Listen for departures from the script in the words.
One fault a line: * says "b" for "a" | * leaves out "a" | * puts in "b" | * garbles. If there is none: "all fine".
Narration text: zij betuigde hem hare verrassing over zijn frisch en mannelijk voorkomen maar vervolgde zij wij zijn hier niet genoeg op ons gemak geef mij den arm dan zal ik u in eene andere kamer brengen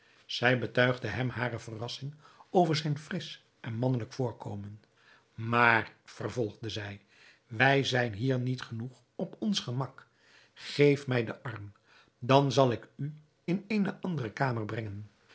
all fine